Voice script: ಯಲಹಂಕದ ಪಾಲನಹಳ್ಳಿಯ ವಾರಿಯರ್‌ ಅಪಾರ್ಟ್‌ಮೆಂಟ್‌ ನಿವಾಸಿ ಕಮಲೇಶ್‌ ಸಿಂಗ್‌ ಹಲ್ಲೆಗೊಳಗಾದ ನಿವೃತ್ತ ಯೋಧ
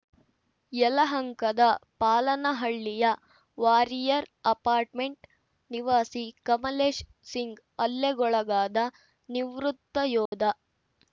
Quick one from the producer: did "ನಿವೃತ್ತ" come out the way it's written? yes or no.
yes